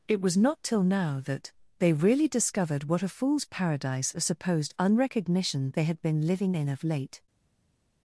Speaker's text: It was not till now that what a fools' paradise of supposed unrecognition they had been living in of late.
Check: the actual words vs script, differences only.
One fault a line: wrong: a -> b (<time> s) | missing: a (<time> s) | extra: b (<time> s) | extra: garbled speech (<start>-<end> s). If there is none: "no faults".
extra: they really discovered (1.8 s)